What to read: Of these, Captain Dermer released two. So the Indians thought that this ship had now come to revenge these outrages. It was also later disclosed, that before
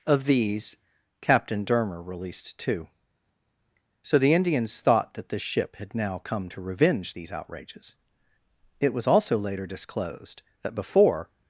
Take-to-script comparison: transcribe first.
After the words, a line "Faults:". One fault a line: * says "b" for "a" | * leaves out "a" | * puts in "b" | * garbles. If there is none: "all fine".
Of these, Captain Dermer released two. So the Indians thought that this ship had now come to revenge these outrages. It was also later disclosed, that before
Faults:
all fine